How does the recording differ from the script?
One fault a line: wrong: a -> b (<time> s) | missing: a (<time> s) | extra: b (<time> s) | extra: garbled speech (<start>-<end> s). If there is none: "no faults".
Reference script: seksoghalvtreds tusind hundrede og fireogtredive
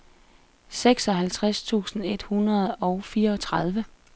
extra: et (2.0 s)